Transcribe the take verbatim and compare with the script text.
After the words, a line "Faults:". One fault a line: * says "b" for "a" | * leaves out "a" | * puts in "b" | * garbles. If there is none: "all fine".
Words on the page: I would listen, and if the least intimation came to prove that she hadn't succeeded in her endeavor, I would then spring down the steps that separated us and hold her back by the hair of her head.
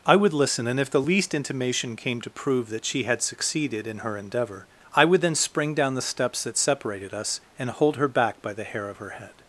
I would listen, and if the least intimation came to prove that she had succeeded in her endeavor, I would then spring down the steps that separated us and hold her back by the hair of her head.
Faults:
* says "had" for "hadn't"